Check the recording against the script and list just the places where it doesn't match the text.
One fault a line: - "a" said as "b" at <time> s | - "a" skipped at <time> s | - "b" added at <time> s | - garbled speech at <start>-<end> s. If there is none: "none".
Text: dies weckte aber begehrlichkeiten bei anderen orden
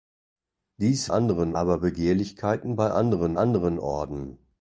- "weckte" said as "anderen" at 1.1 s
- "anderen" added at 3.3 s